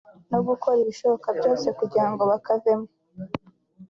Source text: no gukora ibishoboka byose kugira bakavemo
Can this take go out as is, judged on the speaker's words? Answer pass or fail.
fail